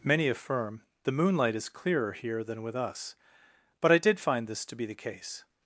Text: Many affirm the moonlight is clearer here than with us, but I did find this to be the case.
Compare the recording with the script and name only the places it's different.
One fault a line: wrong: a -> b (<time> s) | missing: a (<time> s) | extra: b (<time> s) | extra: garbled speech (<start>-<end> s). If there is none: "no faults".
no faults